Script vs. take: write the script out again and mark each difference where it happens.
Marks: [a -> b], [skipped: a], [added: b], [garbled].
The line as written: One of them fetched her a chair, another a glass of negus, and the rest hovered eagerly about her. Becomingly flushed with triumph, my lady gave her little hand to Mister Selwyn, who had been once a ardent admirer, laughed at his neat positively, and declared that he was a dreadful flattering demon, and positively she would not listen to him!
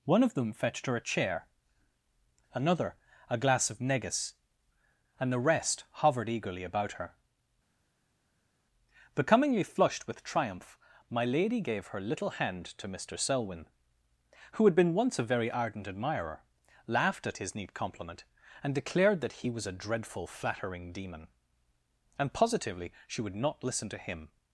One of them fetched her a chair, another a glass of negus, and the rest hovered eagerly about her. Becomingly flushed with triumph, my lady gave her little hand to Mister Selwyn, who had been once a [added: very] ardent admirer, laughed at his neat [positively, -> compliment] and declared that he was a dreadful flattering demon, and positively she would not listen to him!